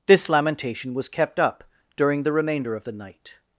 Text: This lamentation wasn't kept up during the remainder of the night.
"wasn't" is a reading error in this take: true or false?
true